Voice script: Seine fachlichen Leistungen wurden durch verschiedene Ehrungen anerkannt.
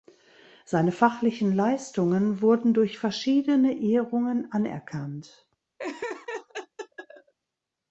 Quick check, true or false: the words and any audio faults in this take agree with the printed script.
false